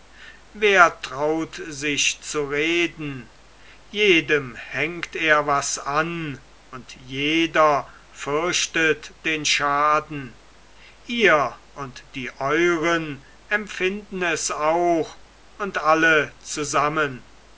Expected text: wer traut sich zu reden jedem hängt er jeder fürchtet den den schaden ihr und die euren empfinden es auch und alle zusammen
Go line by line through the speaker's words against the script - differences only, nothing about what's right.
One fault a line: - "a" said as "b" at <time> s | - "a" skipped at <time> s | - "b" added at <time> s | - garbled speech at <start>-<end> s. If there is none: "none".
- "was an und" added at 5.5 s
- "den" skipped at 9.4 s